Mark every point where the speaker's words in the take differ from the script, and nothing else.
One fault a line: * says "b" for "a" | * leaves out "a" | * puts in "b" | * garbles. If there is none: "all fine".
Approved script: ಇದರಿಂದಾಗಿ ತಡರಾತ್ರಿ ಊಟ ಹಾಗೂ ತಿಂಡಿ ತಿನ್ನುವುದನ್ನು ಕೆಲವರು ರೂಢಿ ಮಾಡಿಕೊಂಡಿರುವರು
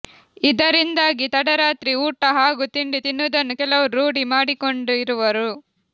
all fine